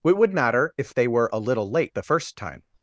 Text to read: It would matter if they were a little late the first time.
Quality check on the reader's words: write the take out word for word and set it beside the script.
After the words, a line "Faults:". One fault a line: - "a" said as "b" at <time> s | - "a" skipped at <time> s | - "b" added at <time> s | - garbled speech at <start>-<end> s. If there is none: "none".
It would matter if they were a little late the first time.
Faults:
none